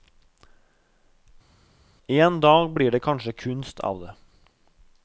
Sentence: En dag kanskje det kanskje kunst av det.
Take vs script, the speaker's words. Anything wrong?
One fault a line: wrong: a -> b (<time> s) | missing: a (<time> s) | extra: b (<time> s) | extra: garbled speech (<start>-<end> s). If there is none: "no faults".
wrong: kanskje -> blir (2.7 s)